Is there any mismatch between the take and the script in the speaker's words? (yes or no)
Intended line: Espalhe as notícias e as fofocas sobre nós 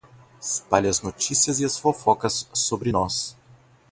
no